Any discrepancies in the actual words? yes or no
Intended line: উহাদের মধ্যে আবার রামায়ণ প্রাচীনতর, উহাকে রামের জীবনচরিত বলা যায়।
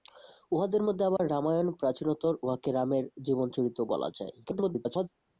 yes